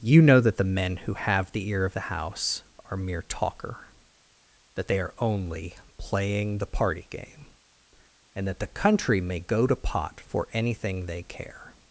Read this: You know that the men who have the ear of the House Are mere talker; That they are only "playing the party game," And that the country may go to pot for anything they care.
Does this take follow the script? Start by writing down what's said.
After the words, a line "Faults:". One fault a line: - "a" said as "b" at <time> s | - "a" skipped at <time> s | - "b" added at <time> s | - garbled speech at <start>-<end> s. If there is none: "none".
You know that the men who have the ear of the House Are mere talker; That they are only "playing the party game," And that the country may go to pot for anything they care.
Faults:
none